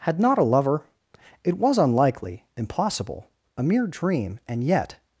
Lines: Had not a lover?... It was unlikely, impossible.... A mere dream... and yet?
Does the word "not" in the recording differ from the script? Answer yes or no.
no